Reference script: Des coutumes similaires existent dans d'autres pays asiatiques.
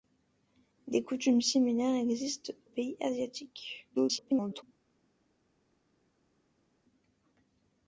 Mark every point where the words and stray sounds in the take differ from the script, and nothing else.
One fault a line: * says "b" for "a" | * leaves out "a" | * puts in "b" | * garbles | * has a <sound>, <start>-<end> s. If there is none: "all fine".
* leaves out "dans d'autres"
* garbles